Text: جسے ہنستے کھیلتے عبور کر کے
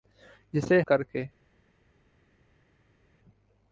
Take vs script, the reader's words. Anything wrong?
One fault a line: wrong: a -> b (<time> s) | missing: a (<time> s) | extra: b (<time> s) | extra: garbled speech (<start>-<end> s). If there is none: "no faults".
missing: ہنستے کھیلتے عبور (0.8 s)